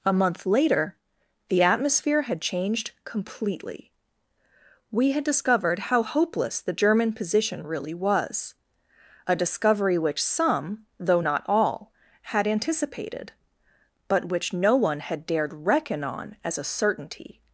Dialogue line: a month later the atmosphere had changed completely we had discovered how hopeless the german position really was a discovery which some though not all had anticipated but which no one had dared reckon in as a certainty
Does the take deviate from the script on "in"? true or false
true